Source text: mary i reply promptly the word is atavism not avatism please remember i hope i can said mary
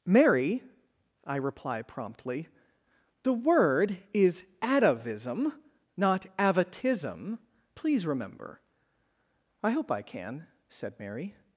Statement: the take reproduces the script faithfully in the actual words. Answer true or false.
true